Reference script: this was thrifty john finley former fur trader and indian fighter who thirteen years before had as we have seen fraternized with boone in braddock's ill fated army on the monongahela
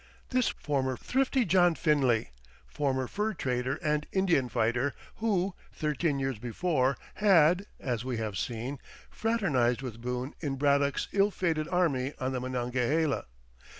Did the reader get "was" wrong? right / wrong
wrong